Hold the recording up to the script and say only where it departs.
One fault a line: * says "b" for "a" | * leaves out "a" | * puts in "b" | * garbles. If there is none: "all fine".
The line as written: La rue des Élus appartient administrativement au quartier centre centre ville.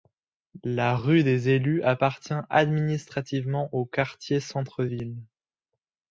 * leaves out "centre"